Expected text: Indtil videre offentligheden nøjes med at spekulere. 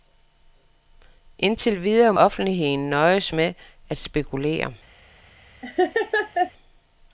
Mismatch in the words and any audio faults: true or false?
true